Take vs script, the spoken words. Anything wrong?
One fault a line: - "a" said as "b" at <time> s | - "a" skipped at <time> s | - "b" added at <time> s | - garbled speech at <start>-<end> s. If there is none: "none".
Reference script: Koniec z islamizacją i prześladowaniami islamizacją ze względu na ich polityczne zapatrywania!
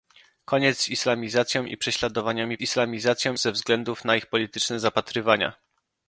none